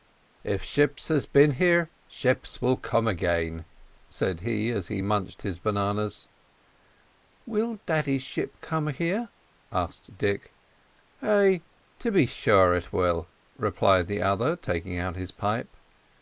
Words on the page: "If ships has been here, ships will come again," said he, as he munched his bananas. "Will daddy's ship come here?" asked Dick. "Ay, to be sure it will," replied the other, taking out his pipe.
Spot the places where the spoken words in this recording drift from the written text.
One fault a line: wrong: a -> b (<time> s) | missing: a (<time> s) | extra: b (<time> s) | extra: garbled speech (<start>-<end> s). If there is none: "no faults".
no faults